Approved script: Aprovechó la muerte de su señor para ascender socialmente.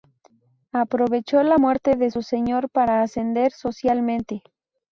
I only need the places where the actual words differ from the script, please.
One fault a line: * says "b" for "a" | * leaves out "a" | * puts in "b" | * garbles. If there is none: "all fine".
all fine